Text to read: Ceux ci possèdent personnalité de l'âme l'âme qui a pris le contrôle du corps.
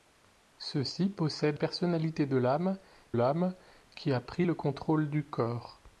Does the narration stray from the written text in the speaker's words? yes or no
no